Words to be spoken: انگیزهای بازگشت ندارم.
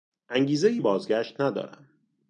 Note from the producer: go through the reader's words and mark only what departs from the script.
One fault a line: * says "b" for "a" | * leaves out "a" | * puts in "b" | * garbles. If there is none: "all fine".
all fine